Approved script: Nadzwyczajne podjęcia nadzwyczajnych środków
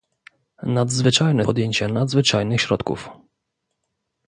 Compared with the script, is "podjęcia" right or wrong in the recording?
right